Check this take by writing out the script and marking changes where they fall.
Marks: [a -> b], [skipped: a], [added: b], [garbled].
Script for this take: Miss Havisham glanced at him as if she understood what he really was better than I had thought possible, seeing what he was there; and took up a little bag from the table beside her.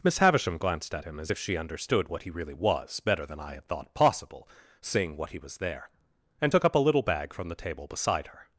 Miss Havisham glanced at him as if she understood what he really was better than I had thought possible, seeing what he was there; and took up a little bag from the table beside her.